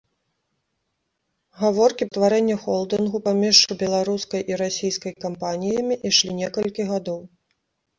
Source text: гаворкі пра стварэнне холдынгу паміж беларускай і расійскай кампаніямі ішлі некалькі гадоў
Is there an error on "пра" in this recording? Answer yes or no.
yes